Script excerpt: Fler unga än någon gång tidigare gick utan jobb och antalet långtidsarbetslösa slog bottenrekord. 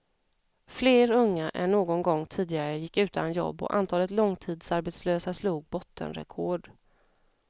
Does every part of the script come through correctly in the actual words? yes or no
yes